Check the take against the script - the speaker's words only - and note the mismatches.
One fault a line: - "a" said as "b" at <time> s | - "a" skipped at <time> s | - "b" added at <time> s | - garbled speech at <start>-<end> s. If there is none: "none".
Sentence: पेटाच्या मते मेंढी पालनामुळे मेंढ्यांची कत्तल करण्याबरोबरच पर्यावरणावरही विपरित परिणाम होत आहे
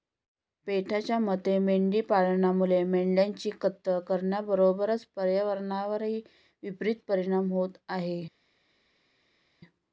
none